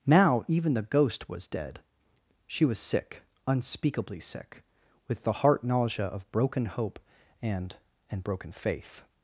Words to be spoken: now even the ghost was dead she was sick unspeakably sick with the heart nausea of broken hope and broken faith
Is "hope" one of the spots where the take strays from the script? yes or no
no